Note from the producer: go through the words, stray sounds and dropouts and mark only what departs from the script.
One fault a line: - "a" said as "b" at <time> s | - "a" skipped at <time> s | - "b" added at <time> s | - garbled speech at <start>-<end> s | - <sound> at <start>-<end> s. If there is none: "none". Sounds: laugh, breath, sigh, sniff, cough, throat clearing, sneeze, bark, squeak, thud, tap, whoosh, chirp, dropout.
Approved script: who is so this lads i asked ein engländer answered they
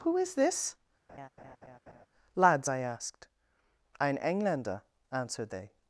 - "so" skipped at 0.3 s
- laugh at 1.1-2.1 s